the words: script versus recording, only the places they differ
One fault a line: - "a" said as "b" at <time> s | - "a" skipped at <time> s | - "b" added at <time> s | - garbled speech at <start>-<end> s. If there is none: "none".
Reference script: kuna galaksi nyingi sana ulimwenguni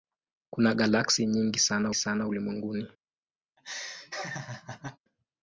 - "sana" added at 1.9 s